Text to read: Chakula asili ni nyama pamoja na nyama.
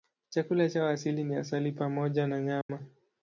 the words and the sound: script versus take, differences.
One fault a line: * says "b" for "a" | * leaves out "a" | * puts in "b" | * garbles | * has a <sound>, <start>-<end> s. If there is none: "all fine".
* puts in "chao"
* says "asali" for "nyama"
* has a dropout, 2.6-2.7 s